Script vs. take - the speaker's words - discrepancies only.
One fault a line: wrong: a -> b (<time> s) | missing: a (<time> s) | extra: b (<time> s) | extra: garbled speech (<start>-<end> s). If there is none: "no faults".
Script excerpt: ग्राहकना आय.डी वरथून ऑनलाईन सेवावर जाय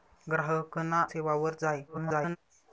missing: आय.डी वरथून ऑनलाईन (1.0 s)
extra: garbled speech (1.9-2.4 s)